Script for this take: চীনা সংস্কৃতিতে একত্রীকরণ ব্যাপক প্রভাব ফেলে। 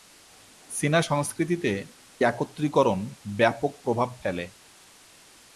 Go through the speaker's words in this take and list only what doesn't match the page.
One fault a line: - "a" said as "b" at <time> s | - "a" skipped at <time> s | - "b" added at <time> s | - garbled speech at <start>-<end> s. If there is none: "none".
none